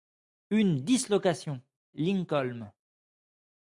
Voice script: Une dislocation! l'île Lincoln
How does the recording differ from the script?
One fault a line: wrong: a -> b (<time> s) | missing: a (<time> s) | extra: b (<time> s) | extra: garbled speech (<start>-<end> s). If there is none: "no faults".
missing: l'île (1.6 s)